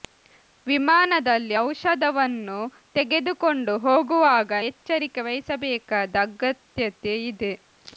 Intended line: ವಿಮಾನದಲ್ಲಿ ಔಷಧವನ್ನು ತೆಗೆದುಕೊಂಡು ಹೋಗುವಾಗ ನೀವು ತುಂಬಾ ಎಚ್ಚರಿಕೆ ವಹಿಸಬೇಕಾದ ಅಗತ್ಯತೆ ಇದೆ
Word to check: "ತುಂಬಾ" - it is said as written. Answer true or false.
false